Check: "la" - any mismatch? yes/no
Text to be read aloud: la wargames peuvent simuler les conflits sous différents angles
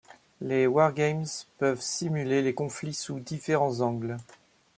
yes